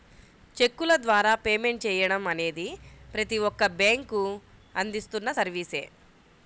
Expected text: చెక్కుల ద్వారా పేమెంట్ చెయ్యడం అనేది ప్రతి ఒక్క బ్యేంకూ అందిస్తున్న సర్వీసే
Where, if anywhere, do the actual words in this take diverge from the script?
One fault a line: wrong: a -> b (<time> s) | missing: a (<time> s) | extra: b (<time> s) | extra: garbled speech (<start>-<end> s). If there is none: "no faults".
no faults